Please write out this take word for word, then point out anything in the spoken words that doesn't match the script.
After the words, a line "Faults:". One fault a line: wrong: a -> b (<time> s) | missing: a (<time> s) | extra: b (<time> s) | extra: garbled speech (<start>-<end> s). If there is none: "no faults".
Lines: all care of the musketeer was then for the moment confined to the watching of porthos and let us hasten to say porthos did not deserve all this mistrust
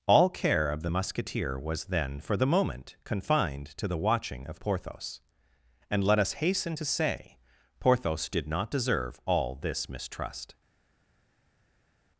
all care of the musketeer was then for the moment confined to the watching of porthos and let us hasten to say porthos did not deserve all this mistrust
Faults:
no faults